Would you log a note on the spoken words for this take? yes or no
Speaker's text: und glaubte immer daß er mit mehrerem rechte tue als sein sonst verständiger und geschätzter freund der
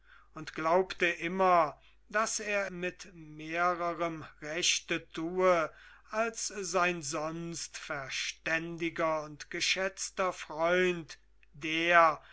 no